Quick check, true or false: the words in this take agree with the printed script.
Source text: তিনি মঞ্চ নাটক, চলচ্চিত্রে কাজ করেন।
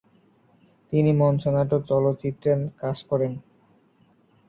true